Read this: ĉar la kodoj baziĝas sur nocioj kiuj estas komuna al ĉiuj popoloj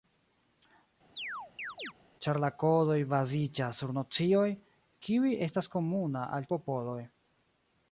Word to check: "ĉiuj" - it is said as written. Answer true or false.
false